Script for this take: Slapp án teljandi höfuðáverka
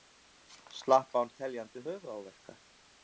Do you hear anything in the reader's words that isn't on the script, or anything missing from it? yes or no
no